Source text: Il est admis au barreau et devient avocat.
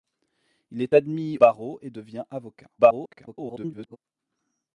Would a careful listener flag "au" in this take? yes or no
yes